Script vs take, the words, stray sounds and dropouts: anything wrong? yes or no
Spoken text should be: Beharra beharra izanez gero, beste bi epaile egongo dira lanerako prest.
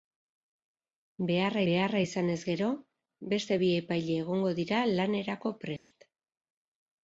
yes